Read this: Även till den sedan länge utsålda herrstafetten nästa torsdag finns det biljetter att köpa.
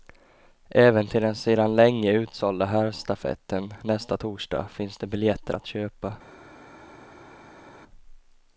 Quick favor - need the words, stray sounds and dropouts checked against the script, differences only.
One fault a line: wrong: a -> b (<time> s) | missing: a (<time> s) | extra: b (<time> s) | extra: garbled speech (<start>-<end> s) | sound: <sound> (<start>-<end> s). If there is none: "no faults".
no faults